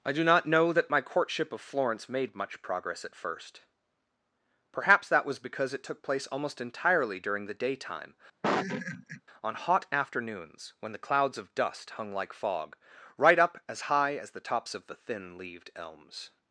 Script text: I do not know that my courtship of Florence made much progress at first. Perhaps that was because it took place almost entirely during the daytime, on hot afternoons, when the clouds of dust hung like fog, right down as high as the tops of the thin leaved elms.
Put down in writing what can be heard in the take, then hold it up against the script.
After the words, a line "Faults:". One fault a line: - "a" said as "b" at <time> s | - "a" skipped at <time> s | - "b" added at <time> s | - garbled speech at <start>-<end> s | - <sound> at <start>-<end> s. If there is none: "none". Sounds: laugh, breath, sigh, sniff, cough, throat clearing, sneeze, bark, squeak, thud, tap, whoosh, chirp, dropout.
I do not know that my courtship of Florence made much progress at first. Perhaps that was because it took place almost entirely during the daytime, on hot afternoons, when the clouds of dust hung like fog, right up as high as the tops of the thin leaved elms.
Faults:
- laugh at 8.4-9.2 s
- "down" said as "up" at 13.4 s